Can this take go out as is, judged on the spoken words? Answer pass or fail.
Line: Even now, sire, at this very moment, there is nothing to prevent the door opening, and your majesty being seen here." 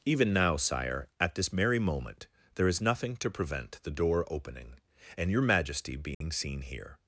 fail